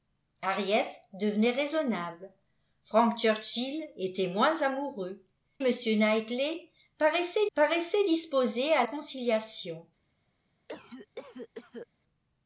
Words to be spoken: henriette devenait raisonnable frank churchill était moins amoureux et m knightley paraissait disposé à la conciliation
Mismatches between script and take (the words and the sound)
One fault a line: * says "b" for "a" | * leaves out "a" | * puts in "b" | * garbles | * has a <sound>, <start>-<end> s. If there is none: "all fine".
* leaves out "et"
* puts in "paraissait"
* leaves out "la"
* has a cough, 10.7-11.9 s